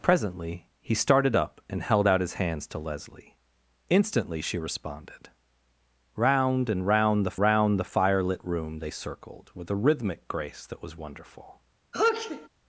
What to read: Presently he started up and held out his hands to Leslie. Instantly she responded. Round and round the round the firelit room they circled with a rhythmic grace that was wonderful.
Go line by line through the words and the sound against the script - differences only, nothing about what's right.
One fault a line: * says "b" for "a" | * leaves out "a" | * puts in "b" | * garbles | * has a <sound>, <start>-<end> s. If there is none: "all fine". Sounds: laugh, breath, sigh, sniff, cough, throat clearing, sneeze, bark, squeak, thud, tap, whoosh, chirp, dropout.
* has a sneeze, 11.9-12.5 s